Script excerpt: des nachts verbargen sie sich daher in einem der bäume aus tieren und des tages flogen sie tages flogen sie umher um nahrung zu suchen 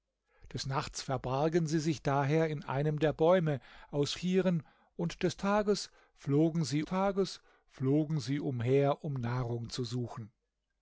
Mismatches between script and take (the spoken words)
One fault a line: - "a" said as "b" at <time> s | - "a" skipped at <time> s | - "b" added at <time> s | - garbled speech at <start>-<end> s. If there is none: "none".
none